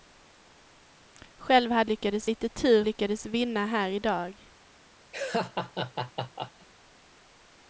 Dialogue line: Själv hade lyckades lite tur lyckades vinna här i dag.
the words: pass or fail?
pass